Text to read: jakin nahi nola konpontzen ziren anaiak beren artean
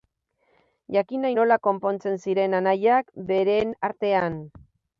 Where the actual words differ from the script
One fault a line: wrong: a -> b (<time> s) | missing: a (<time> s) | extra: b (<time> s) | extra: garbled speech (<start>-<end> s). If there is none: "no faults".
no faults